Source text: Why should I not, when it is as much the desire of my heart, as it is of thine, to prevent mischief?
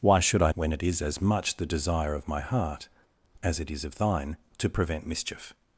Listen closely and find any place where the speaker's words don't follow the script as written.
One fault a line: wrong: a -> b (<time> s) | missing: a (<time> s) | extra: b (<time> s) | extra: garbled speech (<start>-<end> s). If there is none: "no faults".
missing: not (0.5 s)